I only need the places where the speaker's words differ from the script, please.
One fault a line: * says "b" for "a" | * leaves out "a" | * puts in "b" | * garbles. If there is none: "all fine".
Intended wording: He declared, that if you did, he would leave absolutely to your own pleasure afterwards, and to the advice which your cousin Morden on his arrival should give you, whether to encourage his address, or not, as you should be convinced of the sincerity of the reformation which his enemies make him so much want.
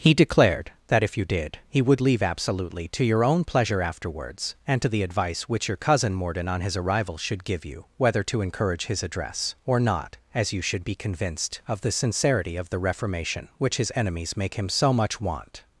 all fine